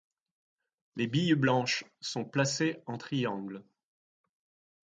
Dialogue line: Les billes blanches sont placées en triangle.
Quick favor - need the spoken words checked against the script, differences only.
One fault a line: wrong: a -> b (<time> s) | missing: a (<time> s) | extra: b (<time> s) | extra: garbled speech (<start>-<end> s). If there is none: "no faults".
no faults